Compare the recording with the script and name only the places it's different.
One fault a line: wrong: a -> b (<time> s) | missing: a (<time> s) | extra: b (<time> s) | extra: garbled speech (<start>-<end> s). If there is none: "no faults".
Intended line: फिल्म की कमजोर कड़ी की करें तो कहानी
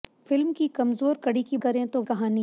no faults